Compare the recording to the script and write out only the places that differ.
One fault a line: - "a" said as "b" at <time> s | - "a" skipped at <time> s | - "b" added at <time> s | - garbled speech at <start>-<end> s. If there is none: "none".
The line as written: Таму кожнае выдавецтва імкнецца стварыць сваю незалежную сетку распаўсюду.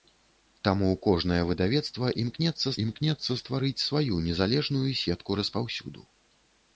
- "імкнецца" added at 2.8 s